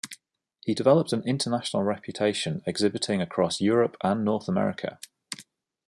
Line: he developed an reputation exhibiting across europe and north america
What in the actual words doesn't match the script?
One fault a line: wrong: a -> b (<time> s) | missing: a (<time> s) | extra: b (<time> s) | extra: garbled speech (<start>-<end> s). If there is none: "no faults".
extra: international (1.3 s)